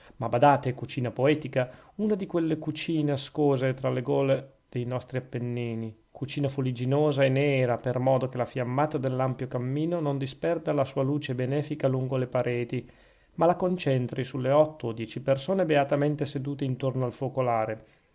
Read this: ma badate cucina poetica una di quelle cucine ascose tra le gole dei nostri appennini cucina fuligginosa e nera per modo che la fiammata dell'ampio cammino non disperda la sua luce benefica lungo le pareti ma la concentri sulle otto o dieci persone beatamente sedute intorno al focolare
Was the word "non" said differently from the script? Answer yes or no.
no